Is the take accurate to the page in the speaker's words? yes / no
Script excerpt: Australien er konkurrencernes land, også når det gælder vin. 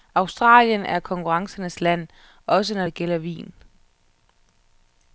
yes